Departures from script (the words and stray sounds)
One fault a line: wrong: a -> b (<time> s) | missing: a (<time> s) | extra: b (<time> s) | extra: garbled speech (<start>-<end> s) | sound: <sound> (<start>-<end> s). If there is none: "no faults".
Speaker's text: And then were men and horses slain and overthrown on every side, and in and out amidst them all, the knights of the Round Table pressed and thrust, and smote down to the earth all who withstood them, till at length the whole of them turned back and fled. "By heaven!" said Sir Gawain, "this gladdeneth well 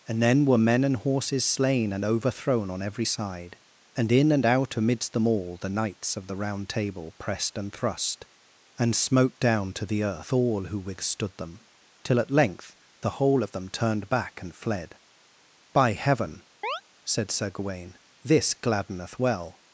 sound: chirp (16.6-16.8 s)